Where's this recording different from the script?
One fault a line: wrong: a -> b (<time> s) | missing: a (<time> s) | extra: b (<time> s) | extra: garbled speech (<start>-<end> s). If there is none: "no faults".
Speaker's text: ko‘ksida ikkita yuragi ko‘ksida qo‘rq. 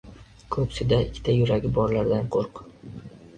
wrong: ko‘ksida -> borlardan (1.8 s)